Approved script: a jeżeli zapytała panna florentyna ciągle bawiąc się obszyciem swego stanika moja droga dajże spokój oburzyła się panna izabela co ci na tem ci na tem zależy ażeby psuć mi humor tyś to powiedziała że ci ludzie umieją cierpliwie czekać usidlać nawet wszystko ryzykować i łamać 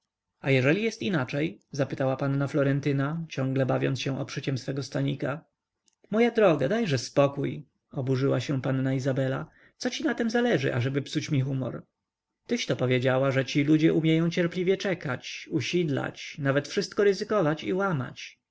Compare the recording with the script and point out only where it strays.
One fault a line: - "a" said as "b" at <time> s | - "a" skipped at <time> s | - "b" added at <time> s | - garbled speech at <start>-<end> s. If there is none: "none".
- "jest inaczej" added at 0.8 s
- "ci na tem" skipped at 10.3 s